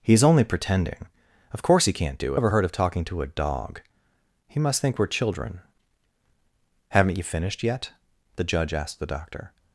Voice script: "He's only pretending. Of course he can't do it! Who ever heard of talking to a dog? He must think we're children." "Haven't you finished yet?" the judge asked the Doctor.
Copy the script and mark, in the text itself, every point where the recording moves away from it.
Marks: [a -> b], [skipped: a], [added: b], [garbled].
"He's only pretending. Of course he can't do [skipped: it! Who] ever heard of talking to a dog? He must think we're children." "Haven't you finished yet?" the judge asked the Doctor.